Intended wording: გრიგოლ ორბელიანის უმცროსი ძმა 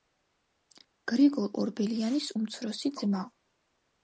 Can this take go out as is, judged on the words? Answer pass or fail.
pass